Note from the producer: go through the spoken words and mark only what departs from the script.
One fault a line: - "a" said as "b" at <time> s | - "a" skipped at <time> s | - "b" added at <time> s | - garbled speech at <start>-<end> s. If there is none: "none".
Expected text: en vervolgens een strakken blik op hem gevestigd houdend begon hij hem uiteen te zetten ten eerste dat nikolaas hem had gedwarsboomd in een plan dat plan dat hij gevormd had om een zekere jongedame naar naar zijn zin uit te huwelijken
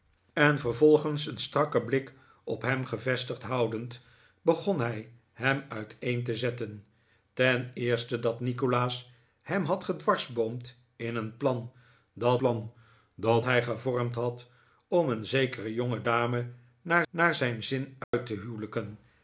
none